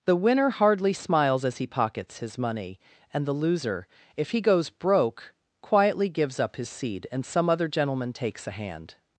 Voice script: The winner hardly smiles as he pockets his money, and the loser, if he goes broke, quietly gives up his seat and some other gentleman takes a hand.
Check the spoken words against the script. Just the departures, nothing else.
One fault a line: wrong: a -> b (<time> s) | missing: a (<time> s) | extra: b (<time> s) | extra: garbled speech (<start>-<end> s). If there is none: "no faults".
wrong: seat -> seed (6.7 s)